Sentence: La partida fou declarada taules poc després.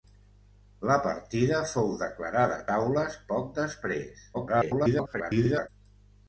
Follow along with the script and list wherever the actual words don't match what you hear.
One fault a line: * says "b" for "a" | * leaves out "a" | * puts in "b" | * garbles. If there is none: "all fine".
* garbles